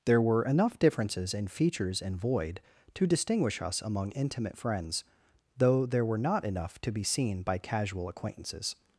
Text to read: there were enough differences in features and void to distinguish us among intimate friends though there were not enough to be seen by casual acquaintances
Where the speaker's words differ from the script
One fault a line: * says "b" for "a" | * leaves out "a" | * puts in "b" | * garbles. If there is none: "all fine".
all fine